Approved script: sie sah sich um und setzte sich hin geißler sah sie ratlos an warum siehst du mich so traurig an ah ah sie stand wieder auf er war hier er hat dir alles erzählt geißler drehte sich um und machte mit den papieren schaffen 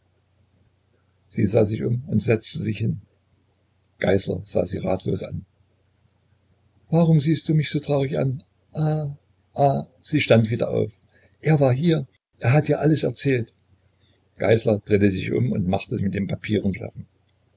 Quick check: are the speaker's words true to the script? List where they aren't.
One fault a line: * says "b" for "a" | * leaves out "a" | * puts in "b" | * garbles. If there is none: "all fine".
all fine